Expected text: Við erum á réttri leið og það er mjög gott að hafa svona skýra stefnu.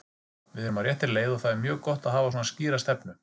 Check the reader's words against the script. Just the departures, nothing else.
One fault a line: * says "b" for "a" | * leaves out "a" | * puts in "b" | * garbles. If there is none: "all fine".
all fine